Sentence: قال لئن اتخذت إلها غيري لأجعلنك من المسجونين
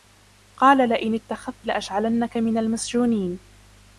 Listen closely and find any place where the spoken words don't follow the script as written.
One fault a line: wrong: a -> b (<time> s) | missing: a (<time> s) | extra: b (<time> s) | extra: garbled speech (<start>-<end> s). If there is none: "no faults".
missing: إلها غيري (1.7 s)